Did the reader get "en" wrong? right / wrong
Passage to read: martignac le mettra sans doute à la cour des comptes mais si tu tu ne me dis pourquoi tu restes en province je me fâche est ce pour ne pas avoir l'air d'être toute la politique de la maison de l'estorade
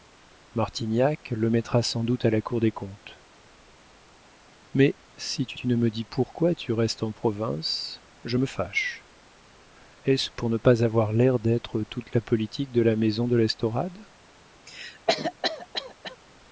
right